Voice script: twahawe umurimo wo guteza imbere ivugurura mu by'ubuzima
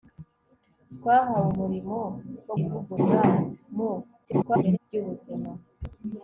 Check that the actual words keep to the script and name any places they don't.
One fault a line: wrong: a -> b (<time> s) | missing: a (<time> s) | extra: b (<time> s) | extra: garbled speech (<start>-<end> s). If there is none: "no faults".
missing: guteza imbere (2.5 s)
extra: garbled speech (4.2-4.8 s)